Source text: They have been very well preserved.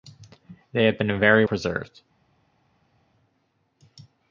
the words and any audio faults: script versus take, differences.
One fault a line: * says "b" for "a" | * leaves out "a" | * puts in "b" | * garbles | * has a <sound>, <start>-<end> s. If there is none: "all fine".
* leaves out "well"